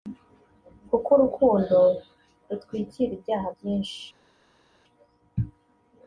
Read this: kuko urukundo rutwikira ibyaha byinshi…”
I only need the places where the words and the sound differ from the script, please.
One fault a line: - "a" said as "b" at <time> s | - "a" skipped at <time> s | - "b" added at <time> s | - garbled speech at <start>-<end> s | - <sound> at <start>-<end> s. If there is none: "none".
none